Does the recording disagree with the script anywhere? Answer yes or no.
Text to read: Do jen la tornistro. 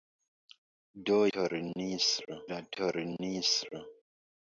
yes